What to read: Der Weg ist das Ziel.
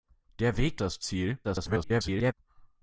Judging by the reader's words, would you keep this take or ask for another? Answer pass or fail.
fail